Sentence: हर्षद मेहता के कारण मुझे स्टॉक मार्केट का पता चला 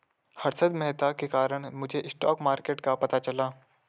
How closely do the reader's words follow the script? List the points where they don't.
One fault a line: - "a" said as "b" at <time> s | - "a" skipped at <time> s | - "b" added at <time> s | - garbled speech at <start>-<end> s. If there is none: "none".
none